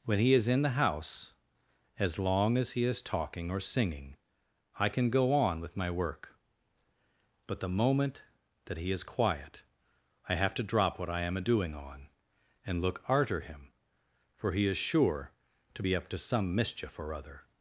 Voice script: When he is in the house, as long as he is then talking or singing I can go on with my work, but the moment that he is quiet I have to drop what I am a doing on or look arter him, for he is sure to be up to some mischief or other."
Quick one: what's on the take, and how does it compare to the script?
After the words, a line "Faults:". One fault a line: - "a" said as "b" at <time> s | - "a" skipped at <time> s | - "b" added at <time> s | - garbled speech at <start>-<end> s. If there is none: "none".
When he is in the house, as long as he is talking or singing I can go on with my work, but the moment that he is quiet I have to drop what I am a doing on and look arter him, for he is sure to be up to some mischief or other."
Faults:
- "then" skipped at 3.0 s
- "or" said as "and" at 12.6 s